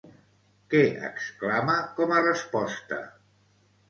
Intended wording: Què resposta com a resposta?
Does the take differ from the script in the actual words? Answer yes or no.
yes